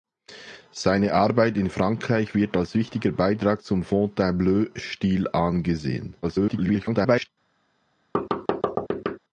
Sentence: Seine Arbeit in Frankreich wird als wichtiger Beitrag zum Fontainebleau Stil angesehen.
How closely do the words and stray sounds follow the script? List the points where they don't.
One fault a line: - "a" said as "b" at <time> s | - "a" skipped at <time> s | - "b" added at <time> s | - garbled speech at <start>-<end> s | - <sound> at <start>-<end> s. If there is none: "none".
- garbled speech at 6.2-7.3 s
- thud at 8.1-9.2 s